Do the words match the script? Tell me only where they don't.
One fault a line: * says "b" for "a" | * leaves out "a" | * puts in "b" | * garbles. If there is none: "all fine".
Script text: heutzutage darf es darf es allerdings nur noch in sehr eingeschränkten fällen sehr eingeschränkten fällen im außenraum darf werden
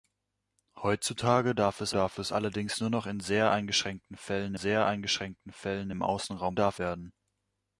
all fine